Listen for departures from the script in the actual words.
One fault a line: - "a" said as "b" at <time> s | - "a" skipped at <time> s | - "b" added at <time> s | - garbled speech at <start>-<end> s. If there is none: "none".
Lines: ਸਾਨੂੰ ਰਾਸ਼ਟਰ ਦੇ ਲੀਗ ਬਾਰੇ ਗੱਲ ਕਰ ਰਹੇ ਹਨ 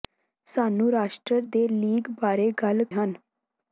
- "ਕਰ ਰਹੇ" skipped at 2.8 s